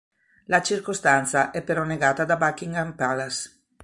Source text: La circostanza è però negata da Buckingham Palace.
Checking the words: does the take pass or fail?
pass